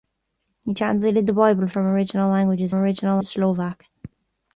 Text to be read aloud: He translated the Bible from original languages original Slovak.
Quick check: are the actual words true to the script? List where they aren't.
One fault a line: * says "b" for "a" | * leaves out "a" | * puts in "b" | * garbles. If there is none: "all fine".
all fine